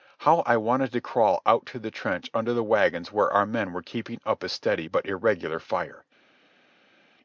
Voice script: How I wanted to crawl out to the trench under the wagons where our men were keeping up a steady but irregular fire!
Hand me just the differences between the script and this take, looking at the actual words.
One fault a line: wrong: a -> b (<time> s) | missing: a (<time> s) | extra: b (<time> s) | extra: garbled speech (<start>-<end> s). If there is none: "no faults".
no faults